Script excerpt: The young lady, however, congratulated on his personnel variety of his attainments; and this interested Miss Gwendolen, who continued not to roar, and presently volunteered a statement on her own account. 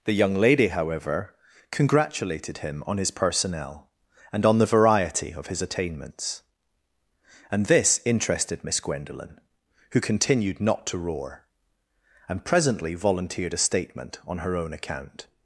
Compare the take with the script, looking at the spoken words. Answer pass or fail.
fail